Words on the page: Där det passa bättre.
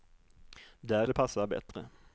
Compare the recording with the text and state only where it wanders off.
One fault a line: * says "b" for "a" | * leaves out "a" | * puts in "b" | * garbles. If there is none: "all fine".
all fine